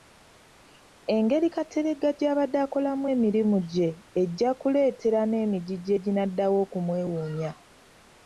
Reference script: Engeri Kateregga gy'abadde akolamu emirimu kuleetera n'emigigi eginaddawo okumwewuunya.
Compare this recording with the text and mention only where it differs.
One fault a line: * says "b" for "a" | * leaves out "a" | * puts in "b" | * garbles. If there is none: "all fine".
* puts in "gye ejja"